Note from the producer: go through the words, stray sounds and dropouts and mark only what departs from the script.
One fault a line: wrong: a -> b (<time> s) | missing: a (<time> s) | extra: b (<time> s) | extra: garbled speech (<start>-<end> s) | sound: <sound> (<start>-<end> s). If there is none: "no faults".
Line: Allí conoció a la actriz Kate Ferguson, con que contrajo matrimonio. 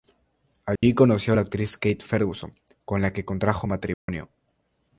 sound: dropout (0.8-0.8 s)
extra: la (3.0 s)
sound: dropout (3.9-4.1 s)